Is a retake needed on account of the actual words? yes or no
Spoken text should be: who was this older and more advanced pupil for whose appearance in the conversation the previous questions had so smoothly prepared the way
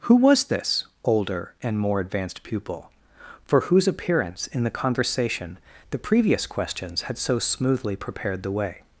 no